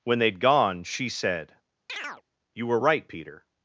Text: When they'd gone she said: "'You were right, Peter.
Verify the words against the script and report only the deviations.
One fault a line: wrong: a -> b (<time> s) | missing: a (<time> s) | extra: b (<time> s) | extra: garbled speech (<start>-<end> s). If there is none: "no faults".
no faults